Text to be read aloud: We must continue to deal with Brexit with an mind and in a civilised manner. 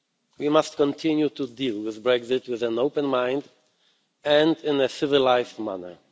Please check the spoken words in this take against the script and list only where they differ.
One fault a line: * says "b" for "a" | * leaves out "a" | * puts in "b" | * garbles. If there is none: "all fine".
* puts in "open"